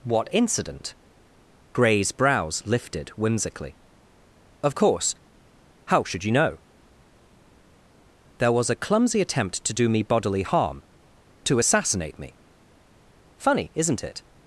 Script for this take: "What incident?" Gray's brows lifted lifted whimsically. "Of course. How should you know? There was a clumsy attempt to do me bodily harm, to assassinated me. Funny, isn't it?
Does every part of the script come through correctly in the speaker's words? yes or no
no